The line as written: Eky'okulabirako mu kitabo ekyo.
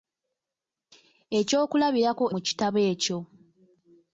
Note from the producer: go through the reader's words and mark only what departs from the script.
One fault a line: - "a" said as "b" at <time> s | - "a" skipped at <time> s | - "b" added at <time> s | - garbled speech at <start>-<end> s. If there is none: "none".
none